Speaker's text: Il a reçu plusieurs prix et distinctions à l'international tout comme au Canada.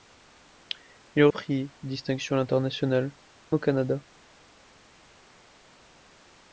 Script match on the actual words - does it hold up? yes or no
no